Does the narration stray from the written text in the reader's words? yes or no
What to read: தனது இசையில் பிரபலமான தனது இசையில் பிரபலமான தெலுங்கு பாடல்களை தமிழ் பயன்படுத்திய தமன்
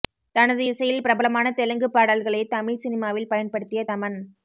yes